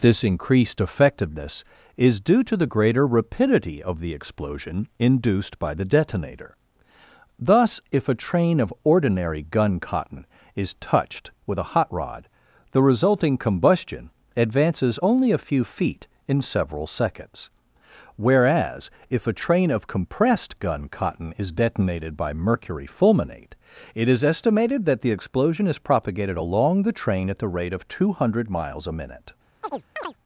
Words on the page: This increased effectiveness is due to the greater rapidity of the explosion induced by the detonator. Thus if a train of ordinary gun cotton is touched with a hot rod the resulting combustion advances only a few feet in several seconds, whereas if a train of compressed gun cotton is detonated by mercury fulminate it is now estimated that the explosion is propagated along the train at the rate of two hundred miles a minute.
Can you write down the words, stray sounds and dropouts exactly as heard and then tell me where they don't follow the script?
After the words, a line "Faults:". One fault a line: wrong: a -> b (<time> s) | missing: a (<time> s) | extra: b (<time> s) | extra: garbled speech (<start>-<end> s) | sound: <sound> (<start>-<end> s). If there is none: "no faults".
This increased effectiveness is due to the greater rapidity of the explosion induced by the detonator. Thus if a train of ordinary gun cotton is touched with a hot rod the resulting combustion advances only a few feet in several seconds, whereas if a train of compressed gun cotton is detonated by mercury fulminate it is estimated that the explosion is propagated along the train at the rate of two hundred miles a minute.
Faults:
missing: now (24.2 s)
sound: chirp (29.6-30.1 s)